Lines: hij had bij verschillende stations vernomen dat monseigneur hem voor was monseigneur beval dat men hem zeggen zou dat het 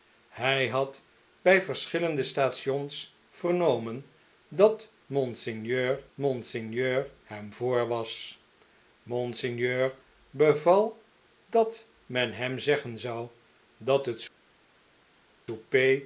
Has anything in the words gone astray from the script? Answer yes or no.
yes